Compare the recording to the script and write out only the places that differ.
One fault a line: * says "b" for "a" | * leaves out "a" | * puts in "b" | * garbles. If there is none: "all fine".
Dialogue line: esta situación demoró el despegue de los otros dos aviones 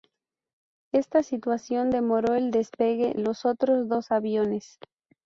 * leaves out "de"